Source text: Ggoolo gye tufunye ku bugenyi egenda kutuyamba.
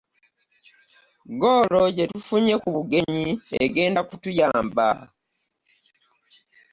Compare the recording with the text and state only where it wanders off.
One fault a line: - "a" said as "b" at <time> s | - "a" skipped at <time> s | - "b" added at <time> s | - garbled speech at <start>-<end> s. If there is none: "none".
none